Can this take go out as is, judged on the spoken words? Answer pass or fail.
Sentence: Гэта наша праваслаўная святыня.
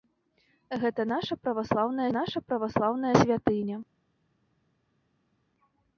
fail